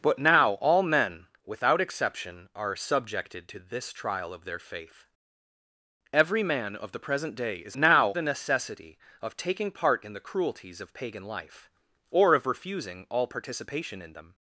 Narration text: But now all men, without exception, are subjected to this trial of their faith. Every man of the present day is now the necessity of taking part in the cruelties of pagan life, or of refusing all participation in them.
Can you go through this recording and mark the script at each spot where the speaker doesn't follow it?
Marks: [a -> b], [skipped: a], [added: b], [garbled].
But now all men, without exception, are subjected to this trial of their faith. Every man of the present day is now the necessity of taking part in the cruelties of pagan life, or of refusing all participation in them.